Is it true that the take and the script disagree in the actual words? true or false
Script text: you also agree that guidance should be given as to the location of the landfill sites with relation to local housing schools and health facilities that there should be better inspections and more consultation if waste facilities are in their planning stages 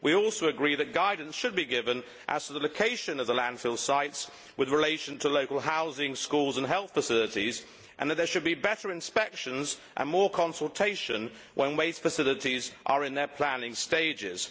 true